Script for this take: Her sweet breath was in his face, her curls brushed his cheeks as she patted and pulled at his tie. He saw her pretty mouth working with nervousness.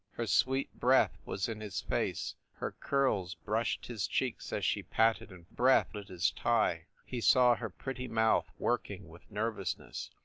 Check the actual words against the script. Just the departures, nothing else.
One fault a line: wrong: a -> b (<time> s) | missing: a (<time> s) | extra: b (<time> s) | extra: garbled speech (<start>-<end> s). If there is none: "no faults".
wrong: pulled -> breath (5.6 s)